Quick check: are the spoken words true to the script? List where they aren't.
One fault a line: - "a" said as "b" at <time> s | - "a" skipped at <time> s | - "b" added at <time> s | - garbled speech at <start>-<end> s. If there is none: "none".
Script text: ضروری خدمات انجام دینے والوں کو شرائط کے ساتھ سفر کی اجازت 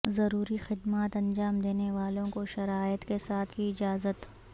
- "سفر" skipped at 3.5 s